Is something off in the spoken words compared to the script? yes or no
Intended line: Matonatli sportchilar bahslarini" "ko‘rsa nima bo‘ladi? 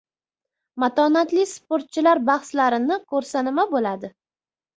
no